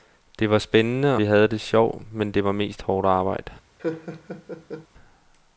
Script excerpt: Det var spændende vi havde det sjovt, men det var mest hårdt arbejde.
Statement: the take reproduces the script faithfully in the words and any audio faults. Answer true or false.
false